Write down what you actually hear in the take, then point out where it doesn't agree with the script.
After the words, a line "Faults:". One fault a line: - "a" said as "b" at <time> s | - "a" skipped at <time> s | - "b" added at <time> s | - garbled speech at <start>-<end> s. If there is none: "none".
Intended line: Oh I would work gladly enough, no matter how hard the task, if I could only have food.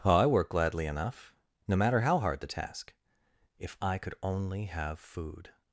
Oh I work gladly enough, no matter how hard the task, if I could only have food.
Faults:
- "would" skipped at 0.2 s